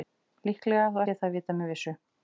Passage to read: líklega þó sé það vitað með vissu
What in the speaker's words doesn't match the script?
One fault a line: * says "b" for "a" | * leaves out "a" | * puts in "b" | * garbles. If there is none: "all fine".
all fine